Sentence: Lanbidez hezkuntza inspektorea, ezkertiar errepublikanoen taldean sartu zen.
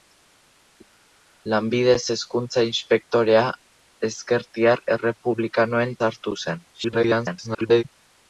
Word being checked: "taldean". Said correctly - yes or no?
no